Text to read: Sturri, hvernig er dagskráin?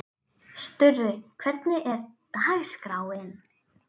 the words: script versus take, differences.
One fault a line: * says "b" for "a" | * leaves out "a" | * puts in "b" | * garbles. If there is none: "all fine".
all fine